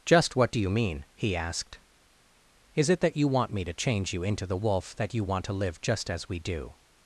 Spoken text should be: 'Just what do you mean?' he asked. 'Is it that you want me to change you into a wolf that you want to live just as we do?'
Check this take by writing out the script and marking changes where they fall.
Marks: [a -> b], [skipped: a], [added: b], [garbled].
'Just what do you mean?' he asked. 'Is it that you want me to change you into [a -> the] wolf that you want to live just as we do?'